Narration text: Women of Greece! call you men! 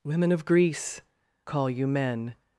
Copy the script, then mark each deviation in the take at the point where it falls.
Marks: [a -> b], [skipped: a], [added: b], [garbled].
Women of Greece! call you men!